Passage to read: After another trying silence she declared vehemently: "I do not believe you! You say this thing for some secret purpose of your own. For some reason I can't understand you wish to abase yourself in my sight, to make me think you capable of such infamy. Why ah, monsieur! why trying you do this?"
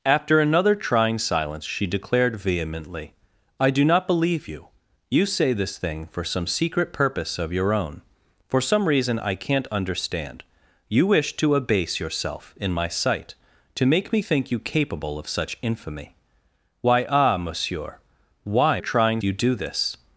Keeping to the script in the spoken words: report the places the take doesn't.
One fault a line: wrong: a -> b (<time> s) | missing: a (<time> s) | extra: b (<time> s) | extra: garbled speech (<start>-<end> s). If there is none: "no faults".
no faults